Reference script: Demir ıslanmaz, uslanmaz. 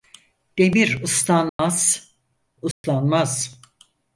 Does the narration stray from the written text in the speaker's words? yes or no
no